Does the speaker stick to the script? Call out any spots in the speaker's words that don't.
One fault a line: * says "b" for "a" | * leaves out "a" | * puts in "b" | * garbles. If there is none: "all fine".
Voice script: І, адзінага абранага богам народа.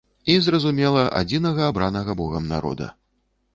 * puts in "зразумела"